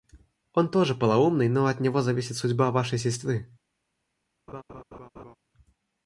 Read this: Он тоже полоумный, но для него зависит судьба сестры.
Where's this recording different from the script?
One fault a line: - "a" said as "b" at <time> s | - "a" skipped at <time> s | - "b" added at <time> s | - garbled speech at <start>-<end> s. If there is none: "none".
- "для" said as "от" at 1.7 s
- "вашей" added at 2.7 s